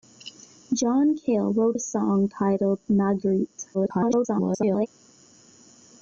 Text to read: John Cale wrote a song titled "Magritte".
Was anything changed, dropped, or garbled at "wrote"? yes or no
no